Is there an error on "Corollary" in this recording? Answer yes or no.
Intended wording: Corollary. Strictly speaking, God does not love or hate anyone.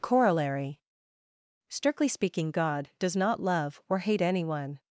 no